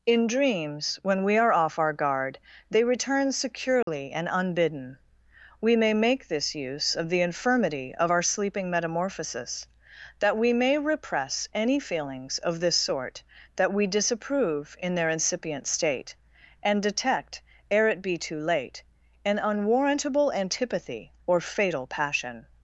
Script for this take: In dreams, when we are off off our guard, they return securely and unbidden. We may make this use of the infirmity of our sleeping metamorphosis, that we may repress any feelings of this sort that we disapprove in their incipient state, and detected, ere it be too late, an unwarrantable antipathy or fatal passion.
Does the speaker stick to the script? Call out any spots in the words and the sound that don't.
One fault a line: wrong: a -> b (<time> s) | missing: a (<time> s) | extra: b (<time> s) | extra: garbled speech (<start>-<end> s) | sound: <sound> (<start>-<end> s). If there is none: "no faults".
missing: off (1.8 s)
sound: dropout (3.8-3.9 s)
wrong: detected -> detect (16.8 s)